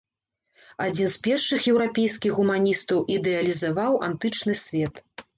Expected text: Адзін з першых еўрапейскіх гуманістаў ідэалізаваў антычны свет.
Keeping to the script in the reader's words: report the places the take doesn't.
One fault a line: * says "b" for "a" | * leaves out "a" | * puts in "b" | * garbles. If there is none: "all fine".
all fine